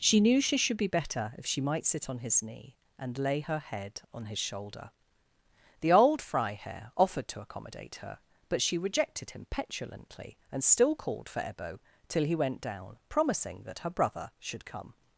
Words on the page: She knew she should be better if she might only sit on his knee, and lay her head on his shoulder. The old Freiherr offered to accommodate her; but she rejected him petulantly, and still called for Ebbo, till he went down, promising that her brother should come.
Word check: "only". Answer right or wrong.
wrong